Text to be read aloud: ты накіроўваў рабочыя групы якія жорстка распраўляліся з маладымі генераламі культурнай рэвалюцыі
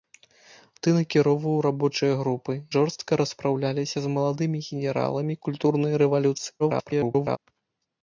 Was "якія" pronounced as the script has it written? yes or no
no